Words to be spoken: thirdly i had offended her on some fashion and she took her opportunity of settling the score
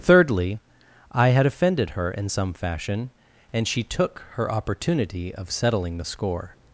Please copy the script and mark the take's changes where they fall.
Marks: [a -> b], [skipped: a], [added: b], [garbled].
thirdly i had offended her [on -> in] some fashion and she took her opportunity of settling the score